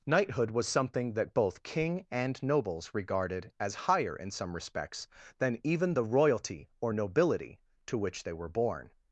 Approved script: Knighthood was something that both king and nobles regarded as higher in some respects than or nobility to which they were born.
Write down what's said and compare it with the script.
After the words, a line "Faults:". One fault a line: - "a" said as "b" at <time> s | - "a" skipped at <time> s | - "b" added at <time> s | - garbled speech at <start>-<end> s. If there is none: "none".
Knighthood was something that both king and nobles regarded as higher in some respects than even the royalty or nobility to which they were born.
Faults:
- "even the royalty" added at 5.6 s